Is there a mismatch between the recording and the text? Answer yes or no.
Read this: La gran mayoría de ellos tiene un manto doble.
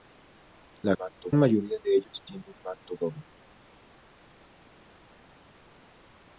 yes